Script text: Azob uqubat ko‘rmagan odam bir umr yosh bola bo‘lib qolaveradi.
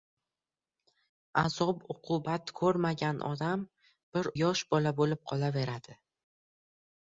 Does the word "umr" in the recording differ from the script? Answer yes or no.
yes